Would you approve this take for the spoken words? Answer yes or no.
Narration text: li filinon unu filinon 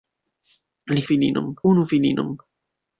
yes